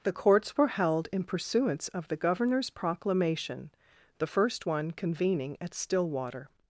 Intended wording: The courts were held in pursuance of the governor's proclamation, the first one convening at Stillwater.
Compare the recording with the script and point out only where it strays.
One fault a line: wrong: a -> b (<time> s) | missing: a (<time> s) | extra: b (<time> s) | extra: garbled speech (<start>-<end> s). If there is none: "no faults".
no faults